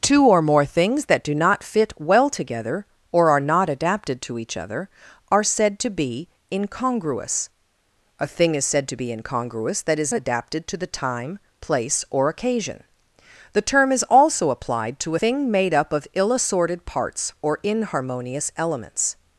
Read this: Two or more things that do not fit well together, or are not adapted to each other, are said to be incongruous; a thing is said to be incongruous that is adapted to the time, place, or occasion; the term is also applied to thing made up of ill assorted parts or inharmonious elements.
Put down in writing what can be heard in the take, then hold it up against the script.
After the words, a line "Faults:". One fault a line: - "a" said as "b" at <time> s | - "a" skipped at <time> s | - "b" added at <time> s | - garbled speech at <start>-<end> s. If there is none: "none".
Two or more things that do not fit well together, or are not adapted to each other, are said to be incongruous; a thing is said to be incongruous that is adapted to the time, place, or occasion; the term is also applied to thing made up of ill assorted parts or inharmonious elements.
Faults:
none